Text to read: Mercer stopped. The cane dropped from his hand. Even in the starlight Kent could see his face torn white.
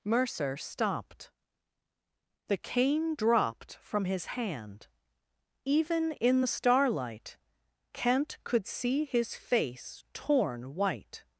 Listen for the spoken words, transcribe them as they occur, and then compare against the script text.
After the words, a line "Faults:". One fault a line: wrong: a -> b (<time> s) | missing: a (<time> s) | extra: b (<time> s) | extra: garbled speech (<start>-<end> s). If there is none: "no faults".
Mercer stopped. The cane dropped from his hand. Even in the starlight Kent could see his face torn white.
Faults:
no faults